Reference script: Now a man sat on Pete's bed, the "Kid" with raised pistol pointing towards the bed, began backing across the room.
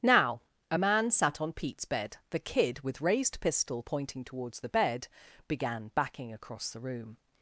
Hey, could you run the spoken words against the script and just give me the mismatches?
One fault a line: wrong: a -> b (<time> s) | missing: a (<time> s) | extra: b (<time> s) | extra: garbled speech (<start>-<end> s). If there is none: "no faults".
no faults